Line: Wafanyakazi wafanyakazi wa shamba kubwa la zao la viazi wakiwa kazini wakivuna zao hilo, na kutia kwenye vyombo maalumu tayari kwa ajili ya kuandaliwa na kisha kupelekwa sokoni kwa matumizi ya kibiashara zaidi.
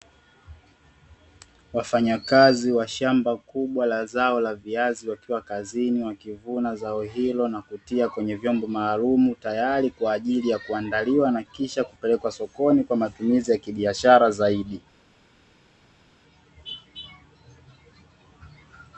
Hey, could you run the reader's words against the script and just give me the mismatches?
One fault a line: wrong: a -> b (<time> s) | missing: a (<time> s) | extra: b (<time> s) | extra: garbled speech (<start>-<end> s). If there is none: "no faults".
missing: wafanyakazi (2.7 s)